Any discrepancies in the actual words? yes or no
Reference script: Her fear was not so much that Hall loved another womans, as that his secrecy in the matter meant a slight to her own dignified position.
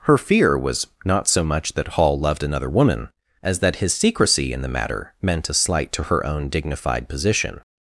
yes